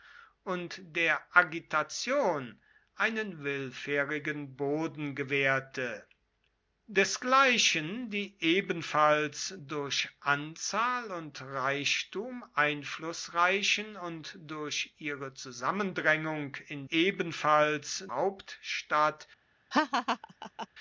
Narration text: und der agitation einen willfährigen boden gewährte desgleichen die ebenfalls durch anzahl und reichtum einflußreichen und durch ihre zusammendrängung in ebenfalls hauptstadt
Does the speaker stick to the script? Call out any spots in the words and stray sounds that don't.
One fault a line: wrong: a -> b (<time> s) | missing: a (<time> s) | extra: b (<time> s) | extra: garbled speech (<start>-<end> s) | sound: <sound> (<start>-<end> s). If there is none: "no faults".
sound: laugh (19.7-20.7 s)